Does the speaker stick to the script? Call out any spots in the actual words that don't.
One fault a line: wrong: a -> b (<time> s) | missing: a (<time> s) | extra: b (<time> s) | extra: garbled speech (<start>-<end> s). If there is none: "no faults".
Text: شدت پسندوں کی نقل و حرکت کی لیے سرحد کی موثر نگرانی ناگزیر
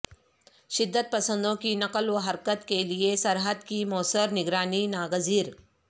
wrong: کی -> کے (2.7 s)